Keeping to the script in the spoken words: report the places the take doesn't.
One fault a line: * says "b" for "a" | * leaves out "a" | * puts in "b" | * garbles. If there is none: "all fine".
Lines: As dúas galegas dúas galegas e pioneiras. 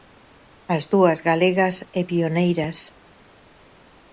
* leaves out "dúas galegas"